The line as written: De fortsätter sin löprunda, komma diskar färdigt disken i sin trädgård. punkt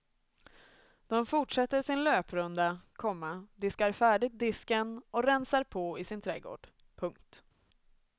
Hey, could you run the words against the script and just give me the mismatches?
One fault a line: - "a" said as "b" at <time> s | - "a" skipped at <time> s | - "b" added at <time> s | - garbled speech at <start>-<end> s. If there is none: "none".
- "och rensar på" added at 5.1 s